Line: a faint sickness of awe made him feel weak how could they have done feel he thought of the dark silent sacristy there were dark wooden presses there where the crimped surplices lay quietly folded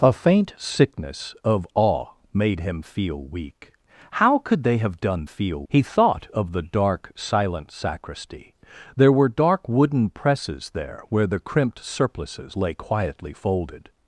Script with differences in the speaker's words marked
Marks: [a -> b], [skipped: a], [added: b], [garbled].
a faint sickness of awe made him feel weak how could they have done feel he thought of the dark silent sacristy there were dark wooden presses there where the crimped surplices lay quietly folded